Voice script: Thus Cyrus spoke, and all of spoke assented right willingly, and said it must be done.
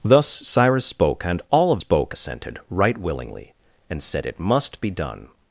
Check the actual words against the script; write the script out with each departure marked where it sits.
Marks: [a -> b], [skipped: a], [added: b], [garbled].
Thus Cyrus spoke, and all of spoke assented right willingly, and said it must be done.